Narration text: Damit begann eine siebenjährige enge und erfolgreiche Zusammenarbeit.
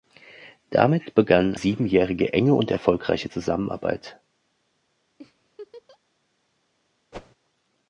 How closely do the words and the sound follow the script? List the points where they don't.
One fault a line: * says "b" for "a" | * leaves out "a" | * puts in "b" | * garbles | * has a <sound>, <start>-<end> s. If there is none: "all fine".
* leaves out "eine"
* has a laugh, 5.2-6.0 s
* has a whoosh, 7.1-7.4 s